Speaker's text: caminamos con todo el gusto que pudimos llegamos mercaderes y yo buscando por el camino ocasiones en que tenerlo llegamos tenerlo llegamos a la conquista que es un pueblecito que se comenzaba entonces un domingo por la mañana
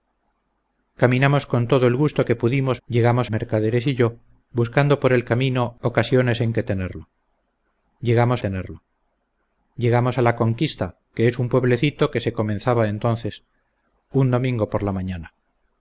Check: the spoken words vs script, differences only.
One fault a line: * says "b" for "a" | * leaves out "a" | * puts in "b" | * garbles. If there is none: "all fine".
all fine